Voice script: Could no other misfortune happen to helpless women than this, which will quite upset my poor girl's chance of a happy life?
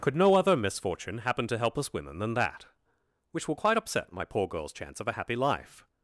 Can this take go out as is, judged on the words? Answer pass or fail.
fail